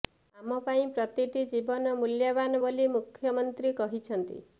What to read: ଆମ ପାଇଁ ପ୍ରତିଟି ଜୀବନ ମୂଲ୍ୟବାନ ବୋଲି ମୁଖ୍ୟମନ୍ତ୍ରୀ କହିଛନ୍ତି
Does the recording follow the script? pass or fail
pass